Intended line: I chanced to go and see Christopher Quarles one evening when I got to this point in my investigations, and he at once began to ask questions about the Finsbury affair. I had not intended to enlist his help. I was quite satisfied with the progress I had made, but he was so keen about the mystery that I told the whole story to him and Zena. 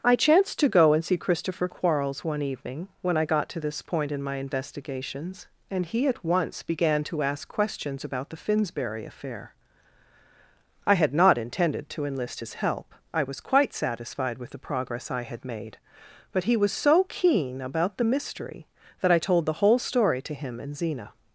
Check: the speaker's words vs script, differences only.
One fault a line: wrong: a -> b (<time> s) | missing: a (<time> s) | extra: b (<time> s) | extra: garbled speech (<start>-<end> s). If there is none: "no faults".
no faults